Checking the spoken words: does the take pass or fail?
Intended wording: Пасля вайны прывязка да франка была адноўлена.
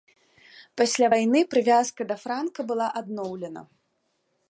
pass